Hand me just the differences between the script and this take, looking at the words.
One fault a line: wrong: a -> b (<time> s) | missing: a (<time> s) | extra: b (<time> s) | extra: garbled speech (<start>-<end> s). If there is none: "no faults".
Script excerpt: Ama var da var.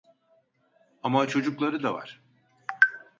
wrong: var -> çocukları (1.3 s)